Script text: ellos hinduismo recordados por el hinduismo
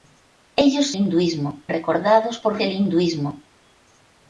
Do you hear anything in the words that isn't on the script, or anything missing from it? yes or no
no